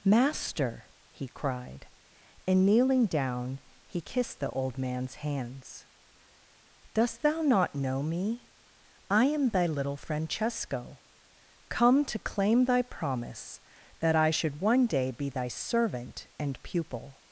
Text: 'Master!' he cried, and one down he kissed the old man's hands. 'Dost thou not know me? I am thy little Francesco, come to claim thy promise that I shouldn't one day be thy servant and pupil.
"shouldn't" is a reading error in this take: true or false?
true